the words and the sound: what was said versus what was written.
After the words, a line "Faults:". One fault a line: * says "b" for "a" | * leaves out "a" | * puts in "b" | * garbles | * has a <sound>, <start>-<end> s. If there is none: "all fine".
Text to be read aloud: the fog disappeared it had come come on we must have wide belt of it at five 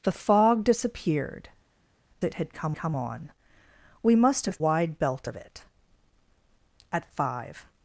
the fog disappeared it had come come on we must have wide belt of it at five
Faults:
all fine